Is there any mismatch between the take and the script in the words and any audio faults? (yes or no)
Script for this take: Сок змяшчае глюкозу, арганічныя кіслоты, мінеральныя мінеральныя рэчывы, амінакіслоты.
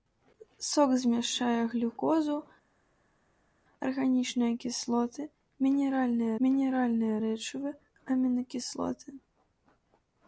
no